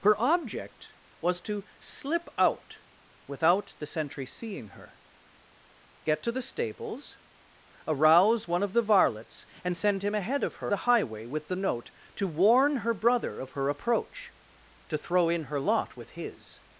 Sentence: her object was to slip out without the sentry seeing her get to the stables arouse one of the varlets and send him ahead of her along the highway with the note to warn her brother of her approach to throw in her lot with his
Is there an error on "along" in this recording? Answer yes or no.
yes